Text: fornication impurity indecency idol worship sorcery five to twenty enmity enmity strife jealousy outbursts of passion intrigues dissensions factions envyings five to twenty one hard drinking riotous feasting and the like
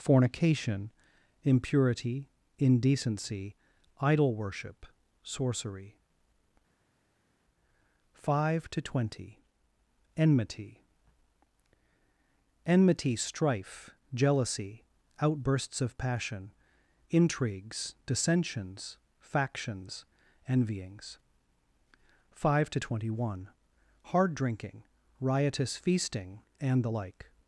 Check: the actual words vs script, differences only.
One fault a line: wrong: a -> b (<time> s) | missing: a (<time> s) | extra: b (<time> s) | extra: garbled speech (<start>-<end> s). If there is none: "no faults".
no faults